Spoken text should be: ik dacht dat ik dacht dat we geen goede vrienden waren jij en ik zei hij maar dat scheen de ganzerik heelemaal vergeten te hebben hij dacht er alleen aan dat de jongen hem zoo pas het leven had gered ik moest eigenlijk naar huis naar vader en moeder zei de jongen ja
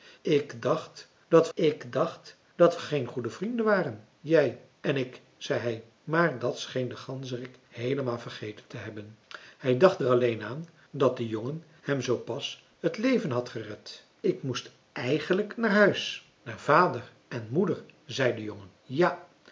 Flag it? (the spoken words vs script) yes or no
no